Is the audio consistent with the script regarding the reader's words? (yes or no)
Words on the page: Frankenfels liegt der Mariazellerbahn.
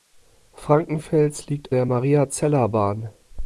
yes